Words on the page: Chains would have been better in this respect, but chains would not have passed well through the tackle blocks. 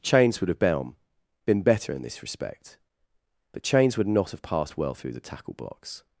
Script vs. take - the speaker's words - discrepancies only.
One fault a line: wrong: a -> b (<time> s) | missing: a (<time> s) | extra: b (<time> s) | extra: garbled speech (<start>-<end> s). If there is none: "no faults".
extra: been (1.4 s)